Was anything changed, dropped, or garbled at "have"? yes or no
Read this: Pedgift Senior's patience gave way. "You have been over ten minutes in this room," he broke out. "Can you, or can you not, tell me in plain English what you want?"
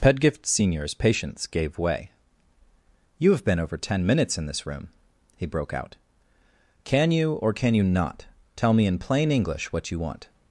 no